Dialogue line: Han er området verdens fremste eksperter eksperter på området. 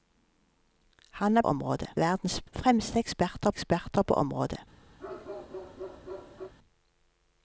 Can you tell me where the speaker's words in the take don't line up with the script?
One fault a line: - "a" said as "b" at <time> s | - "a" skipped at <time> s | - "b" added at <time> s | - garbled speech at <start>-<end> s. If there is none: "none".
none